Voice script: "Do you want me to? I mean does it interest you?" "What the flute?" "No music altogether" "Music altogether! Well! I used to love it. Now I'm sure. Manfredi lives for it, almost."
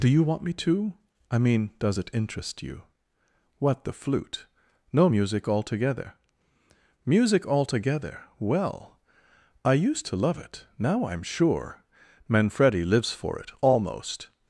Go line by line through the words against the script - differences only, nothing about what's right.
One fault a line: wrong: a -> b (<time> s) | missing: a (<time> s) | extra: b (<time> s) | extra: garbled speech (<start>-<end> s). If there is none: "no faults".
no faults